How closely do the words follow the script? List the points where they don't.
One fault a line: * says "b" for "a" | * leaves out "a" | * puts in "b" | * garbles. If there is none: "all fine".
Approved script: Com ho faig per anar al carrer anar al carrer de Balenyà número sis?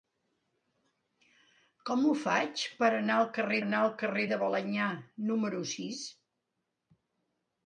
all fine